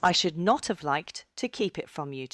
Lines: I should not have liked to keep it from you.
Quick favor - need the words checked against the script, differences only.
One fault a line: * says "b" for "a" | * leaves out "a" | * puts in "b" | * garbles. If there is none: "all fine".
all fine